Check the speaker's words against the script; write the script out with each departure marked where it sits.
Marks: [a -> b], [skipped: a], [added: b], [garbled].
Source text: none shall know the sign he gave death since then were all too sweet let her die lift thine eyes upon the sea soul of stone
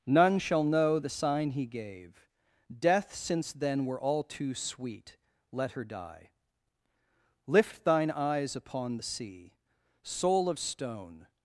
none shall know the sign he gave death since then were all too sweet let her die lift thine eyes upon the sea soul of stone